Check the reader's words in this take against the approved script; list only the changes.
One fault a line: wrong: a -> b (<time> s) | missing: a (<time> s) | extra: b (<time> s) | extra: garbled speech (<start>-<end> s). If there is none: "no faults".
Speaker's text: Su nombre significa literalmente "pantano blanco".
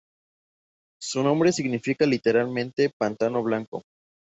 no faults